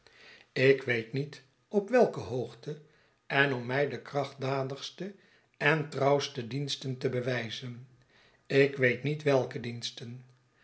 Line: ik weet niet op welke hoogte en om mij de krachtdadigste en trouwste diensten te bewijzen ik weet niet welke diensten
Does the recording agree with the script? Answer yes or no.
yes